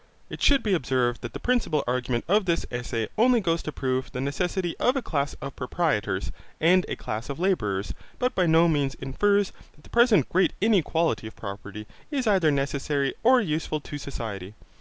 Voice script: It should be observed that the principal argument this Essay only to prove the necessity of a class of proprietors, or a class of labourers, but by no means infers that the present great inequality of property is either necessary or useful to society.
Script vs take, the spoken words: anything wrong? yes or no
yes